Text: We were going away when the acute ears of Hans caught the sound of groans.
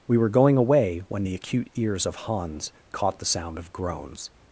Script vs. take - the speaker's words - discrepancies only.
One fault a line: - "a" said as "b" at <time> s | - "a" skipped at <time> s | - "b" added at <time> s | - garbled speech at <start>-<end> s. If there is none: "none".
none